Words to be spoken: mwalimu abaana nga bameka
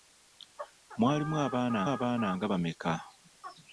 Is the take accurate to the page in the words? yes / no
no